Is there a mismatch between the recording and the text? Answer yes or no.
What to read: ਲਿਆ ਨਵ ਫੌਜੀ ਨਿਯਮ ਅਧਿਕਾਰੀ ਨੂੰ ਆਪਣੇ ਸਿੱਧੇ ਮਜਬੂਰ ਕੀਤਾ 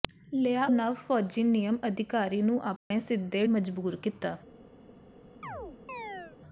no